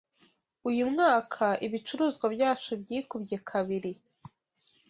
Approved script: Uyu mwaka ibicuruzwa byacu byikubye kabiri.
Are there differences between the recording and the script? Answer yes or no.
no